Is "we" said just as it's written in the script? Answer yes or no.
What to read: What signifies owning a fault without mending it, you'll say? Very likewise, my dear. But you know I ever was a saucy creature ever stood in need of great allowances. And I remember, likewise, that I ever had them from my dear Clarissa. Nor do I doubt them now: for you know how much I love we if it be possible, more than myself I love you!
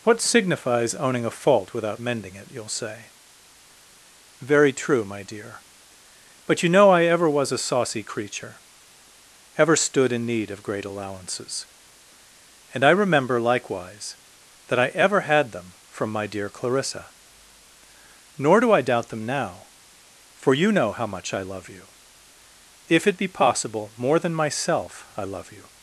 no